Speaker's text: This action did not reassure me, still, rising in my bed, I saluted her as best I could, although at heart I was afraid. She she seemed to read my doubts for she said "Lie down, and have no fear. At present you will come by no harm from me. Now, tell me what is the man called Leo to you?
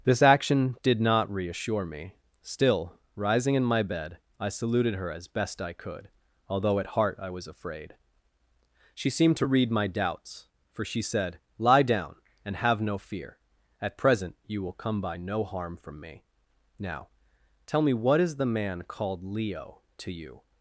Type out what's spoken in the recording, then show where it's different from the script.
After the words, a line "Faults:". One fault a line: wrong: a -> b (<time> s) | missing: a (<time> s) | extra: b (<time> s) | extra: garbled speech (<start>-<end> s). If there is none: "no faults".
This action did not reassure me, still, rising in my bed, I saluted her as best I could, although at heart I was afraid. She seemed to read my doubts for she said "Lie down, and have no fear. At present you will come by no harm from me. Now, tell me what is the man called Leo to you?
Faults:
missing: she (9.1 s)